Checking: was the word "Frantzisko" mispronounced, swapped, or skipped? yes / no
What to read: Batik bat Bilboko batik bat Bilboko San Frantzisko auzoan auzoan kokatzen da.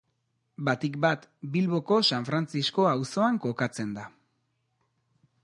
no